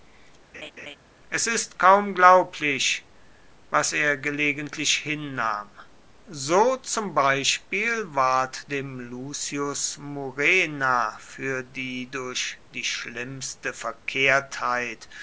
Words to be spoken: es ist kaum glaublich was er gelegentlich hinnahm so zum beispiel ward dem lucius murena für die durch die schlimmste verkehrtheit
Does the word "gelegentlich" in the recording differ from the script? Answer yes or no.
no